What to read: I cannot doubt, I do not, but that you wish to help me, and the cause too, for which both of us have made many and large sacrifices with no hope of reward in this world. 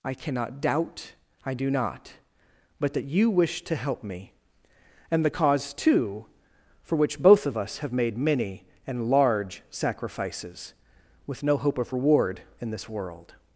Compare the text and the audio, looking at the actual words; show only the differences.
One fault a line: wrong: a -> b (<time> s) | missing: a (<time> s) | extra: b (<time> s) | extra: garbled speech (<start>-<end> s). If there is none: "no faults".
no faults